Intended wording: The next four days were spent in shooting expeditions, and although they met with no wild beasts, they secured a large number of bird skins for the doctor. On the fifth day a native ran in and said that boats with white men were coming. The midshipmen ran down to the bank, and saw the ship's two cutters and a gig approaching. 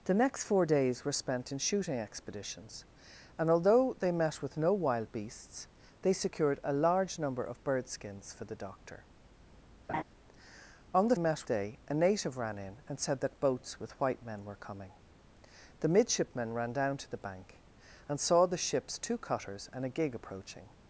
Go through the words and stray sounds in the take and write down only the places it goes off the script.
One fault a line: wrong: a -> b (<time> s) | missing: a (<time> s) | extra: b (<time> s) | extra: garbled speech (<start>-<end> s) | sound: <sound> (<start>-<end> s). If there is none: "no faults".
sound: laugh (9.9-10.0 s)
wrong: fifth -> met (11.2 s)